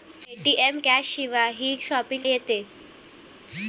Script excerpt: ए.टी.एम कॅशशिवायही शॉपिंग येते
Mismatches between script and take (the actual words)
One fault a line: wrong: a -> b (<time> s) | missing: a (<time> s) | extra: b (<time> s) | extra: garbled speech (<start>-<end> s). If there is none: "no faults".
no faults